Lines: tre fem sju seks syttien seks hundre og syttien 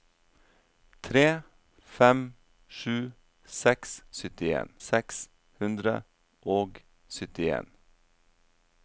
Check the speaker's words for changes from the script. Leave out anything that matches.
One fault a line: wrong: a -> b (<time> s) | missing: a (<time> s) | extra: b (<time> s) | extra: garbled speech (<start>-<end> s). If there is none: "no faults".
no faults